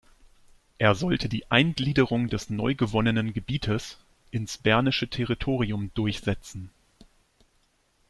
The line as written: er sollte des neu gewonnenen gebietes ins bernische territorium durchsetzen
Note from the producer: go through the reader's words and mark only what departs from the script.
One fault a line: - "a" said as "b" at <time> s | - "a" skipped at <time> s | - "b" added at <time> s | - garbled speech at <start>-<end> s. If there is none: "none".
- "die eingliederung" added at 1.3 s